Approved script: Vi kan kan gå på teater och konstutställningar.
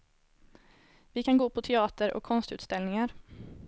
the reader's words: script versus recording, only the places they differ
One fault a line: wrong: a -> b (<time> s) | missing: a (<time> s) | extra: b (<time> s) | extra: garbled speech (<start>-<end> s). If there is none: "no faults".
missing: kan (1.4 s)